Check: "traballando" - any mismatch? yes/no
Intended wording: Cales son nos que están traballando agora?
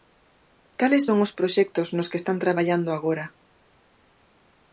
no